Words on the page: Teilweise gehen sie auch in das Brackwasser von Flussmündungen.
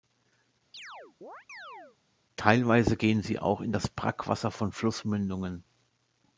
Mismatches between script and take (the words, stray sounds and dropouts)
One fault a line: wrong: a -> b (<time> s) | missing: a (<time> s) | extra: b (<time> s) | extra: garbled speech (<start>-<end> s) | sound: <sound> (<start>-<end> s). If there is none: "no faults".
sound: chirp (0.7-2.0 s)